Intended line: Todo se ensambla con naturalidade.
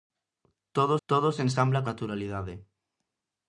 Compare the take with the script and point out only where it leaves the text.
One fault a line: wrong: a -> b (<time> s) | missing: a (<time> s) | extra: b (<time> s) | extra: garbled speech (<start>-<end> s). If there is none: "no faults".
extra: todo (1.1 s)
missing: con (1.8 s)